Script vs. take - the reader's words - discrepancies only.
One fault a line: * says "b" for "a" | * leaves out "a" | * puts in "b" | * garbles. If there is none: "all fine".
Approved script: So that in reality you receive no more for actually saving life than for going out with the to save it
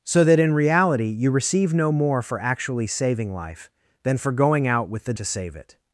all fine